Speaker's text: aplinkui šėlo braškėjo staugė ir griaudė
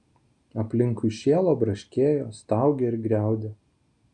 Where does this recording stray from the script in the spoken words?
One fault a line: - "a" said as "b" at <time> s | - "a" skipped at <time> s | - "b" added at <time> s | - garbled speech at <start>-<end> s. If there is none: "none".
none